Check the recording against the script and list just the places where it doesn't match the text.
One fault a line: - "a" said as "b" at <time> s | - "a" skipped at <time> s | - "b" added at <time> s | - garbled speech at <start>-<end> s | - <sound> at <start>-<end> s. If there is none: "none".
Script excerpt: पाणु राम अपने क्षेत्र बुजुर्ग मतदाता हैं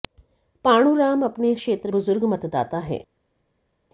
none